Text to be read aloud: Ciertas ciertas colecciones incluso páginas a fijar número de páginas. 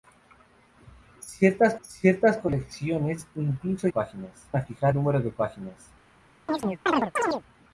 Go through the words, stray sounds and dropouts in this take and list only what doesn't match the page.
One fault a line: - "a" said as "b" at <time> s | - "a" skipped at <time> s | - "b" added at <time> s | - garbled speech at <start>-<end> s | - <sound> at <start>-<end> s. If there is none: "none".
- chirp at 6.5-7.4 s